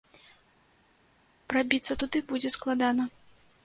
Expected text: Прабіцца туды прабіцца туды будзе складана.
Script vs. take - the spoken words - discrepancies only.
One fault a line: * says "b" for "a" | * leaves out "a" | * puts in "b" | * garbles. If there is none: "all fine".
* leaves out "прабіцца туды"